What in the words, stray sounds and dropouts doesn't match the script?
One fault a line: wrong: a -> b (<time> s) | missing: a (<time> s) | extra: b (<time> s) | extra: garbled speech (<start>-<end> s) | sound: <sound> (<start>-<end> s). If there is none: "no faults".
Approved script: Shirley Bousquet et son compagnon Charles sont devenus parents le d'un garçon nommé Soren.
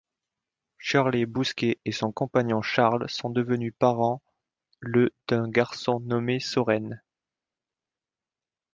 no faults